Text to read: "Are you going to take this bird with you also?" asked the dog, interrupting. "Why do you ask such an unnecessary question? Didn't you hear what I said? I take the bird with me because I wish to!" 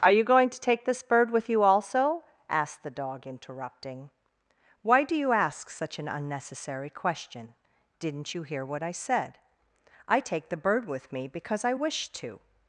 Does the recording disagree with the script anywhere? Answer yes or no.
no